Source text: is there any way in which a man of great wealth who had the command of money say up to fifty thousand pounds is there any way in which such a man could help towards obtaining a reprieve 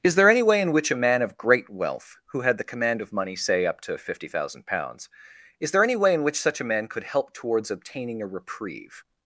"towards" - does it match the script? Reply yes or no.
yes